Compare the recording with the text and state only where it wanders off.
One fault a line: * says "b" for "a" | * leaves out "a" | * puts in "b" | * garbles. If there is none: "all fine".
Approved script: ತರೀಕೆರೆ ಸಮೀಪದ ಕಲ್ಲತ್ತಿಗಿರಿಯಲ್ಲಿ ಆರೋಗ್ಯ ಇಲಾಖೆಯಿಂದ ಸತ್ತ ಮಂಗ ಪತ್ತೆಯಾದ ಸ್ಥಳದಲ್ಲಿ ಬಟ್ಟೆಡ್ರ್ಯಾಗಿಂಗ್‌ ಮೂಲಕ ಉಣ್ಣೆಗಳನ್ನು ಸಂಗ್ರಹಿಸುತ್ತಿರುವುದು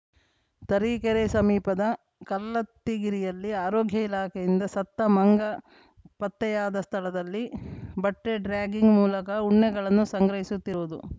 all fine